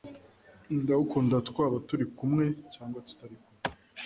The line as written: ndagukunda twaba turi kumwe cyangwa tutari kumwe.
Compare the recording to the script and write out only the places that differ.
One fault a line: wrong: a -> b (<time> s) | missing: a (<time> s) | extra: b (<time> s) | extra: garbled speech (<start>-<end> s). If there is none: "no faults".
no faults